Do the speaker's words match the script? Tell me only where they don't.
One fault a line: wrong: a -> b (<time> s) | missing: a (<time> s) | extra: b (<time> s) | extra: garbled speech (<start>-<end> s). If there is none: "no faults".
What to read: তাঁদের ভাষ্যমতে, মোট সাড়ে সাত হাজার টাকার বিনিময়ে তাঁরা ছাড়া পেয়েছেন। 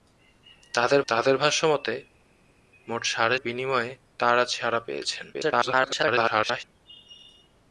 extra: তাঁদের (1.1 s)
missing: সাত হাজার টাকার (3.4 s)
extra: garbled speech (5.3-6.6 s)